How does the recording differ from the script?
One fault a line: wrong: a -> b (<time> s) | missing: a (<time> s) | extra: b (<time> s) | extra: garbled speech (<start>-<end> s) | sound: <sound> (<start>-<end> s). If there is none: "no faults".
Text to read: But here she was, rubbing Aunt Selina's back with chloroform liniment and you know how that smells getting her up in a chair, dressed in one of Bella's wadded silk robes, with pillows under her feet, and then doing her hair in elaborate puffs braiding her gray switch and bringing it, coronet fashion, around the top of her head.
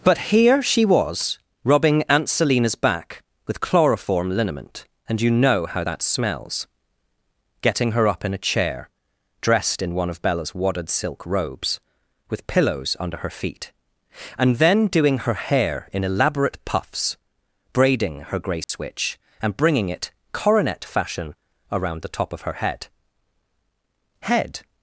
sound: dropout (18.6-18.7 s)
extra: head (24.2 s)